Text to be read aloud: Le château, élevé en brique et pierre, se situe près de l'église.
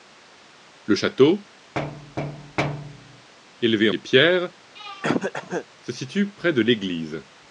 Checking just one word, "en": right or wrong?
wrong